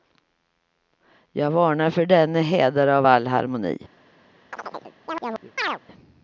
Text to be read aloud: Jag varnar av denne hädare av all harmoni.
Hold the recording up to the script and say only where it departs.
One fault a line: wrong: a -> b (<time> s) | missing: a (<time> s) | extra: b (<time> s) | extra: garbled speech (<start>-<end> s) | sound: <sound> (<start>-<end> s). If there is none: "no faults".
wrong: av -> för (1.9 s)
sound: chirp (4.5-5.8 s)